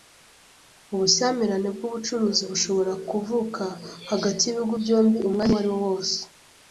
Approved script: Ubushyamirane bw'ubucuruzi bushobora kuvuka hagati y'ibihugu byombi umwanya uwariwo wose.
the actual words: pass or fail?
pass